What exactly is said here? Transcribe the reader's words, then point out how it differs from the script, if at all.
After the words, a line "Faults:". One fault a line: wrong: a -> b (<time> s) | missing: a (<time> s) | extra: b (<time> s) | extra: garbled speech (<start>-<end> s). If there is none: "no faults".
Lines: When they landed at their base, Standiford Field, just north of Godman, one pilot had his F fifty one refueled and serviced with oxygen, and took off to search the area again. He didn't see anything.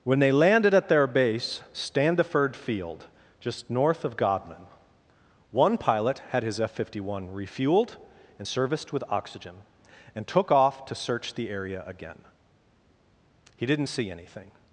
When they landed at their base, Standiford Field, just north of Godman, one pilot had his F fifty one refueled and serviced with oxygen, and took off to search the area again. He didn't see anything.
Faults:
no faults